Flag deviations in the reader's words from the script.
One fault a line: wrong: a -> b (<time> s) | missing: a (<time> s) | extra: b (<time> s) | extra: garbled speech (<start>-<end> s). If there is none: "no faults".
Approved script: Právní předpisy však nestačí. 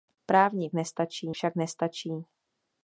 wrong: předpisy -> nestačí (0.7 s)